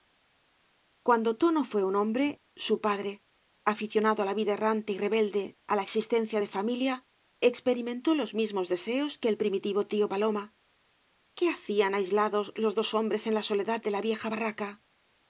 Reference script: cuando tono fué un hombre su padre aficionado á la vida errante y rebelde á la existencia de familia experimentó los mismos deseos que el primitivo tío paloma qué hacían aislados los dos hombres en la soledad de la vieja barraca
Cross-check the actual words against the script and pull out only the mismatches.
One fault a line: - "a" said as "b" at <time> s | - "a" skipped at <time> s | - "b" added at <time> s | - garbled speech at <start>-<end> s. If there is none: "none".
none